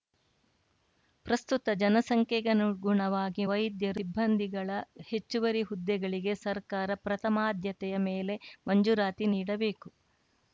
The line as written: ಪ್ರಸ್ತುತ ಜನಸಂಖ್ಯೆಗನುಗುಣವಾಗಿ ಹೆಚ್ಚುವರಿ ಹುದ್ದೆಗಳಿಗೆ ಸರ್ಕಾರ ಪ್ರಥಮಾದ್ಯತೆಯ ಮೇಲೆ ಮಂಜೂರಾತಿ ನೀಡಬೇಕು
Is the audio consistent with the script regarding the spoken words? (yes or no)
no